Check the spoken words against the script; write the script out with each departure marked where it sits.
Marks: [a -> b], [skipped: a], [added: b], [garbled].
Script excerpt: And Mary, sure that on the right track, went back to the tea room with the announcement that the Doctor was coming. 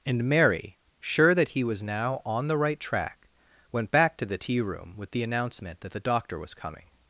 And Mary, sure that [added: he was now] on the right track, went back to the tea room with the announcement that the Doctor was coming.